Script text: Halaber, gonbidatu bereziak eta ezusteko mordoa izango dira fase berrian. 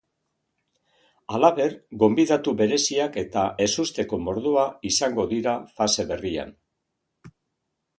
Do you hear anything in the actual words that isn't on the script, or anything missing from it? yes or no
no